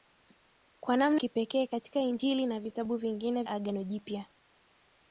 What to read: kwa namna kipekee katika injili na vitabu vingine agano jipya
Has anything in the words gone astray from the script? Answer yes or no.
no